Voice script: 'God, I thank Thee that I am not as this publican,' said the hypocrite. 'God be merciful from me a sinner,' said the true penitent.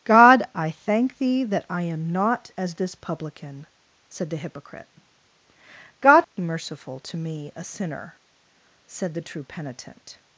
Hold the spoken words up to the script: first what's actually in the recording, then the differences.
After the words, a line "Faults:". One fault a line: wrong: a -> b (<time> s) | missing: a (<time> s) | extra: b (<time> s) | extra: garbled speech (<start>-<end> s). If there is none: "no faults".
'God, I thank Thee that I am not as this publican,' said the hypocrite. 'God be merciful to me a sinner,' said the true penitent.
Faults:
wrong: from -> to (7.0 s)